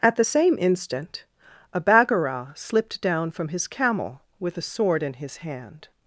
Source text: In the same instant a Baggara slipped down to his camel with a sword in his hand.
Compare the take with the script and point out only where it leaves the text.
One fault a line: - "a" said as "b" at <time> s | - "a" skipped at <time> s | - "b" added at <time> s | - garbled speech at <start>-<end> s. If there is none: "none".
- "In" said as "At" at 0.0 s
- "to" said as "from" at 3.3 s